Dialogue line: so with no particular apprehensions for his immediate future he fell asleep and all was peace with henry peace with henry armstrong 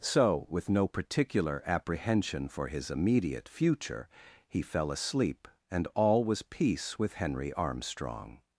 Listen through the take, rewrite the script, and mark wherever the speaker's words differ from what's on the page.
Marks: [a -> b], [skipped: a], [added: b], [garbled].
so with no particular [apprehensions -> apprehension] for his immediate future he fell asleep and all was peace with henry [skipped: peace with henry] armstrong